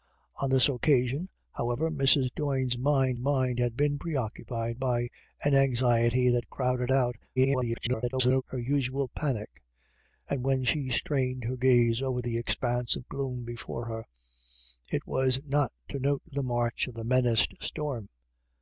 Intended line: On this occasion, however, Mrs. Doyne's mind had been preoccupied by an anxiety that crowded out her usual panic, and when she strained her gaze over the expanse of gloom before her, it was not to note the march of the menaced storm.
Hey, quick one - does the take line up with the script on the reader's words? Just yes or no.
no